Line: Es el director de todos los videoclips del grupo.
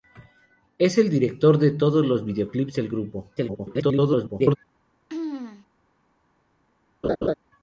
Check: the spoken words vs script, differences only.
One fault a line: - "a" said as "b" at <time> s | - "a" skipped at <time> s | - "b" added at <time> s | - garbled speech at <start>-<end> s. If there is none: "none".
- garbled speech at 3.4-4.6 s